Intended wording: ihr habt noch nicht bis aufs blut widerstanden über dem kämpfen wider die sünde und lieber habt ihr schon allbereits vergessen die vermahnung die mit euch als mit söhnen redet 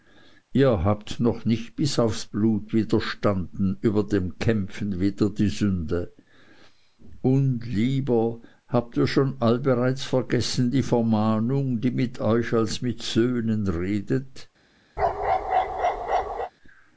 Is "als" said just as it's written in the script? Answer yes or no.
yes